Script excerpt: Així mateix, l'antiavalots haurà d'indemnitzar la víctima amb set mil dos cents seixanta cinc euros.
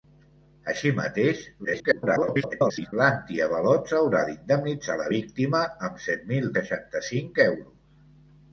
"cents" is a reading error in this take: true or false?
true